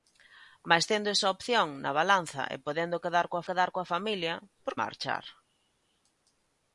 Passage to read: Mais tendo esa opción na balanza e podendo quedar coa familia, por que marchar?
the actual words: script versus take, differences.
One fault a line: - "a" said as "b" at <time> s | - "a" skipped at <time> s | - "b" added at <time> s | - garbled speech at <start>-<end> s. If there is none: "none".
- "quedar coa" added at 3.5 s
- "que" skipped at 4.7 s